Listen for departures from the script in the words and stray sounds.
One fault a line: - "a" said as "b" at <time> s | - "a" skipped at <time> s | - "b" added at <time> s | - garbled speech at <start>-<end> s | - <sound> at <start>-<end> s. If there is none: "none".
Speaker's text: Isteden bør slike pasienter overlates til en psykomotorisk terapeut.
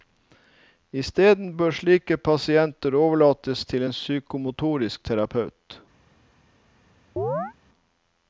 - chirp at 7.2-7.5 s